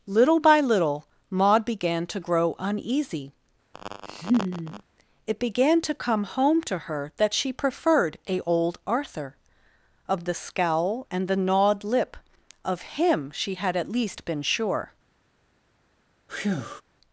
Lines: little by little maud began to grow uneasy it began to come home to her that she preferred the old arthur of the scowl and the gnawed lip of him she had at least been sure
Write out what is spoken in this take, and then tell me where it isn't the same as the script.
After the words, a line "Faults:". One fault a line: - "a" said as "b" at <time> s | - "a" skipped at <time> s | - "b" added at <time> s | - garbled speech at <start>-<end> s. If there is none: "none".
little by little maud began to grow uneasy it began to come home to her that she preferred a old arthur of the scowl and the gnawed lip of him she had at least been sure
Faults:
- "the" said as "a" at 8.3 s